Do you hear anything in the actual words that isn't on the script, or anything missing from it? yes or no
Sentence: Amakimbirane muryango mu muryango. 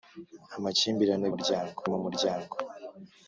no